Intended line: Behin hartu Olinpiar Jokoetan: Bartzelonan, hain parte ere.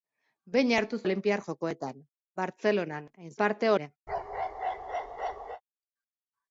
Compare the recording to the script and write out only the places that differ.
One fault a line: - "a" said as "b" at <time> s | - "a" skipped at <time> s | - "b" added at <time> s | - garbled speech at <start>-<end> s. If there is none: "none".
none